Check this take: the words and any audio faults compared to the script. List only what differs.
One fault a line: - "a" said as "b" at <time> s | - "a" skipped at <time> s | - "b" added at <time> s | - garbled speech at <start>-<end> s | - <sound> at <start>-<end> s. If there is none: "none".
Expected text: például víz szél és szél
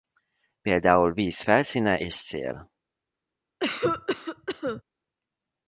- "szél" said as "felszíne" at 1.4 s
- cough at 3.6-4.8 s